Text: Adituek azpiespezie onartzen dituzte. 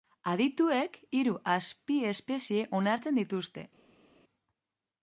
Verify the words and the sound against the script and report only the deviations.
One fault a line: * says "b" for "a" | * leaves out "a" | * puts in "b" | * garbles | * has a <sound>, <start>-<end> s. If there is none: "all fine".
* puts in "hiru"